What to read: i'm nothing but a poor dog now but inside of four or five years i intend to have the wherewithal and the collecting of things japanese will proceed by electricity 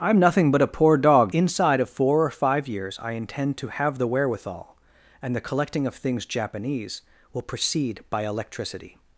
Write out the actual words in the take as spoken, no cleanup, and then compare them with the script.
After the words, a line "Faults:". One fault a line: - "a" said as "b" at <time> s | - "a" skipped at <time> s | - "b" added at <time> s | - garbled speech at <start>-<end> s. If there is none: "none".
i'm nothing but a poor dog inside of four or five years i intend to have the wherewithal and the collecting of things japanese will proceed by electricity
Faults:
- "now but" skipped at 1.4 s